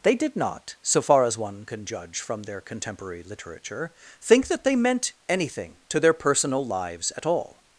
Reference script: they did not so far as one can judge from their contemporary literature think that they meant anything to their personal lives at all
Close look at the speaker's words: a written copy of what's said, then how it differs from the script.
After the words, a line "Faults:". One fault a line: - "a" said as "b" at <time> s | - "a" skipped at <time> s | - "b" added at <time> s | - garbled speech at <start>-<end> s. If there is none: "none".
they did not so far as one can judge from their contemporary literature think that they meant anything to their personal lives at all
Faults:
none